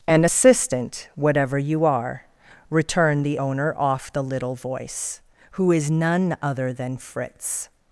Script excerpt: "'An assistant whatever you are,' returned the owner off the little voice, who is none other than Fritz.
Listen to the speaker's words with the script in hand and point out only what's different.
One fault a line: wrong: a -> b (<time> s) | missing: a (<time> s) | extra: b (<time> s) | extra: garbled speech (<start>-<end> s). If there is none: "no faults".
no faults